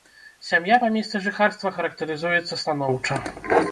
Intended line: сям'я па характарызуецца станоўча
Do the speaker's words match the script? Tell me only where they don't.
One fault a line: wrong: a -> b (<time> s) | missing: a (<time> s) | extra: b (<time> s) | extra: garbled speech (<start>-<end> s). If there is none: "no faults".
extra: месцы жыхарства (1.0 s)